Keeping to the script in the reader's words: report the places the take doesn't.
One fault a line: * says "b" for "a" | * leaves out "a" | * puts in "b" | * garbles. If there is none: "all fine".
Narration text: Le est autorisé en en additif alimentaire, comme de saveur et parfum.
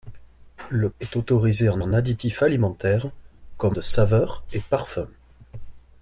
all fine